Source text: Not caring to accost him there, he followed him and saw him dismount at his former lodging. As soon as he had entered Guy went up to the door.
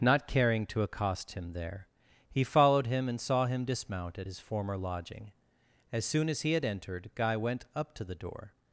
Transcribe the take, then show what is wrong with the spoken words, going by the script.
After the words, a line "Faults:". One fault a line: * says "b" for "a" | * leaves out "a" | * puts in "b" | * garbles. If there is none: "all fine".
Not caring to accost him there, he followed him and saw him dismount at his former lodging. As soon as he had entered Guy went up to the door.
Faults:
all fine